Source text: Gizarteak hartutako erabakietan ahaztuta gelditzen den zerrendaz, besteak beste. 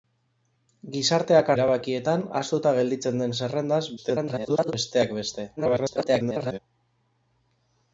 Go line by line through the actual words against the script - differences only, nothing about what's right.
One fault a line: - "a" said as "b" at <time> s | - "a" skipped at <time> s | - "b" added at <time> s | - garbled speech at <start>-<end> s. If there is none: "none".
- "hartutako" skipped at 1.5 s
- garbled speech at 4.0-4.7 s
- garbled speech at 5.6-6.6 s